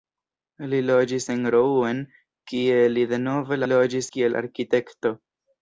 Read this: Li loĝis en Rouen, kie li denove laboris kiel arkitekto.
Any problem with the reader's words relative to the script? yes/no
yes